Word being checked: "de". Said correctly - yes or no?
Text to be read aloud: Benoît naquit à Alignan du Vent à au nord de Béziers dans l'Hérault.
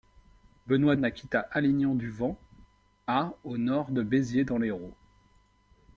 yes